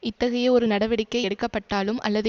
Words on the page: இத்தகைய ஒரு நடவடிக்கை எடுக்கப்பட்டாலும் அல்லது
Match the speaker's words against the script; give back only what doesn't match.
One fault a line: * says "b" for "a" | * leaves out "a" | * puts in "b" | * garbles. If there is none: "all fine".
all fine